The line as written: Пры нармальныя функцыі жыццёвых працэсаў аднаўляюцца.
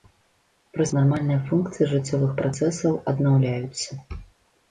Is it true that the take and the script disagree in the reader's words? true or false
false